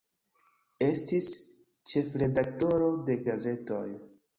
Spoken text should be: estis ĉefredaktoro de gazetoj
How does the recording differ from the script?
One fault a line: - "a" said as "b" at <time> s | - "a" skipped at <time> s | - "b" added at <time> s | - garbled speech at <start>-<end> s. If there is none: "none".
none